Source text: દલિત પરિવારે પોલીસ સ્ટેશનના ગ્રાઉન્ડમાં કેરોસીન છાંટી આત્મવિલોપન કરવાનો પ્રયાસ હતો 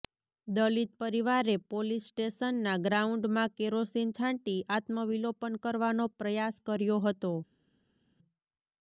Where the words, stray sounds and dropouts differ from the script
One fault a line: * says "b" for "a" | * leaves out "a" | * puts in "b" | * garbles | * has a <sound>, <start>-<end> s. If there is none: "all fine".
* puts in "કર્યો"